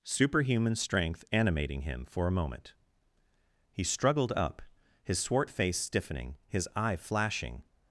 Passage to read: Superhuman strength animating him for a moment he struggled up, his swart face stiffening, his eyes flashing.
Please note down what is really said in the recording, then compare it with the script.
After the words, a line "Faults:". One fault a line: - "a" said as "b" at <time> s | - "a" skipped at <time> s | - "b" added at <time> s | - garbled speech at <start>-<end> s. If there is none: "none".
Superhuman strength animating him for a moment he struggled up, his swart face stiffening, his eye flashing.
Faults:
- "eyes" said as "eye" at 6.8 s